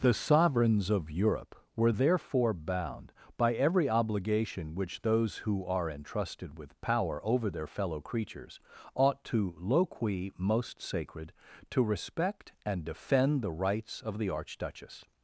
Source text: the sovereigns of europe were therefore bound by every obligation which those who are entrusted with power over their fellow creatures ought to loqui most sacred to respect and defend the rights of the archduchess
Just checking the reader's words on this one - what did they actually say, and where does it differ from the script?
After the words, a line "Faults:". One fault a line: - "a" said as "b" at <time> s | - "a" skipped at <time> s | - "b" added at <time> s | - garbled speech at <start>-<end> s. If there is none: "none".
the sovereigns of europe were therefore bound by every obligation which those who are entrusted with power over their fellow creatures ought to loqui most sacred to respect and defend the rights of the archduchess
Faults:
none